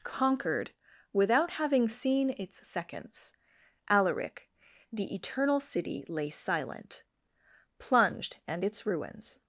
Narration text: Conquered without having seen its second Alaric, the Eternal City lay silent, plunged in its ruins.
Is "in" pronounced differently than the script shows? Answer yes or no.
yes